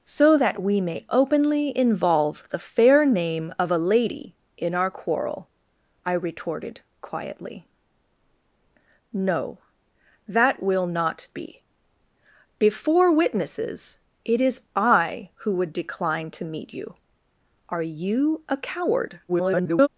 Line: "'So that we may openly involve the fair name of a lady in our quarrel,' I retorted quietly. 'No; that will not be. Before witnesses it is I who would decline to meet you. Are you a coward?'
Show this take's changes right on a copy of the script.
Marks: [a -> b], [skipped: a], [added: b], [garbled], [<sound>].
"'So that we may openly involve the fair name of a lady in our quarrel,' I retorted quietly. 'No; that will not be. Before witnesses it is I who would decline to meet you. Are you a coward?' [garbled]